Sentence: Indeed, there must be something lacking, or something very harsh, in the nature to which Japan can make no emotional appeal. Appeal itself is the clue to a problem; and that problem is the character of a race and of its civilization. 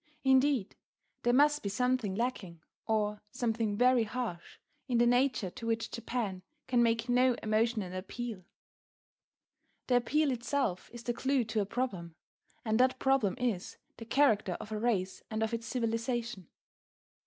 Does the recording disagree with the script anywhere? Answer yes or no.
yes